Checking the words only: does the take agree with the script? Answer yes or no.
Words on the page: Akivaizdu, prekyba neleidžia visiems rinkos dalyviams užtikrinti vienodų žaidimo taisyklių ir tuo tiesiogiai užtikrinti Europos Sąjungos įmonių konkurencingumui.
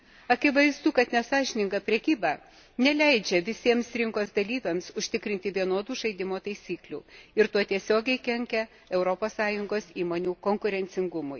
no